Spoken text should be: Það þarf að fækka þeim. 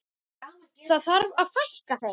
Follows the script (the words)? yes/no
yes